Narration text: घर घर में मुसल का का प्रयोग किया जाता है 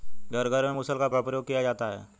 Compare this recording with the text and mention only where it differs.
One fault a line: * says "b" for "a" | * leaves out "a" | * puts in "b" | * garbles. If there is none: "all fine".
all fine